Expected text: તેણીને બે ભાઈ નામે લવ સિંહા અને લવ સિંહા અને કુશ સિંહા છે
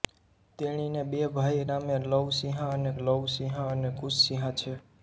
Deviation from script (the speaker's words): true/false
false